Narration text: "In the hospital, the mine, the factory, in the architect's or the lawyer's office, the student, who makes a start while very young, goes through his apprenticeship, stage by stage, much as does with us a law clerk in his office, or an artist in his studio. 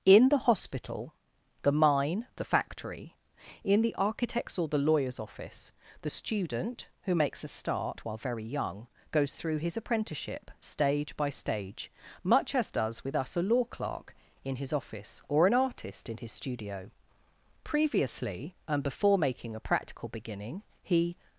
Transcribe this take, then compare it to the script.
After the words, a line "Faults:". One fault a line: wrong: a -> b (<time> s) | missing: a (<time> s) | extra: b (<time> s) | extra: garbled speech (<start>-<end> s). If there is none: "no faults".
"In the hospital, the mine, the factory, in the architect's or the lawyer's office, the student, who makes a start while very young, goes through his apprenticeship, stage by stage, much as does with us a law clerk in his office, or an artist in his studio. Previously, and before making a practical beginning, he
Faults:
extra: Previously and before making a practical beginning he (17.6 s)